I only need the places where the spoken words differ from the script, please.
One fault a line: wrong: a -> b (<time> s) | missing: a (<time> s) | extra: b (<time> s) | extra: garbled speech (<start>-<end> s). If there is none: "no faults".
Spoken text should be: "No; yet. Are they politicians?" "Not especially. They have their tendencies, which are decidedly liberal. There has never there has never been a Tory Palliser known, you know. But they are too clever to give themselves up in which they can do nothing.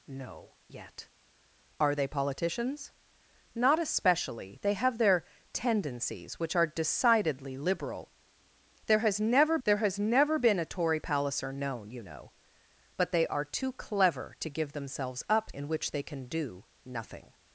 no faults